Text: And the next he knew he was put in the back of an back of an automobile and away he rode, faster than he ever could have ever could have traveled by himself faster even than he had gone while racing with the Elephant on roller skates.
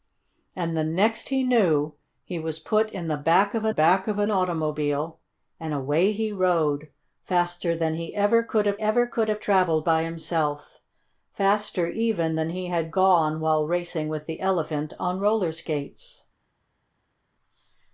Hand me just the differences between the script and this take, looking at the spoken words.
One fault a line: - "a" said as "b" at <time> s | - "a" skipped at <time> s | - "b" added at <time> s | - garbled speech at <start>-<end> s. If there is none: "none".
none